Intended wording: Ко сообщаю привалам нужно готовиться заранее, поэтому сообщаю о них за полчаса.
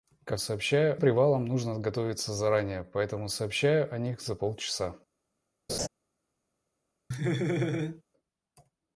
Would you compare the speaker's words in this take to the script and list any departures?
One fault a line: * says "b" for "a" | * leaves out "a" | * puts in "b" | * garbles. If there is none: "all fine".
all fine